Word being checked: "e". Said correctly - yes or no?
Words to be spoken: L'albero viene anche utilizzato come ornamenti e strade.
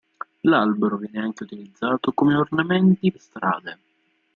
yes